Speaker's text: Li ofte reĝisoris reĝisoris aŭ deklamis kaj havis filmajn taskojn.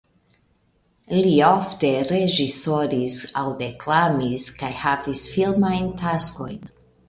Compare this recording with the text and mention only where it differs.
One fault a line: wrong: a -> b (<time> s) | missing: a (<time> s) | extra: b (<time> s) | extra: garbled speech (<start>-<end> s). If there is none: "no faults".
missing: reĝisoris (3.2 s)